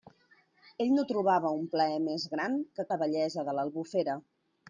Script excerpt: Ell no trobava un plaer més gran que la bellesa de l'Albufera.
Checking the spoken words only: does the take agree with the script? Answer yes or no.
yes